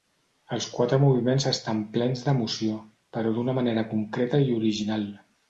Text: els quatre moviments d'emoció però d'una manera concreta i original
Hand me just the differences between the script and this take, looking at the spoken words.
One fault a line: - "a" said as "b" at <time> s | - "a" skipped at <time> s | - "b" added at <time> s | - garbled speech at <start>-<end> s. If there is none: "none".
- "estan plens" added at 1.5 s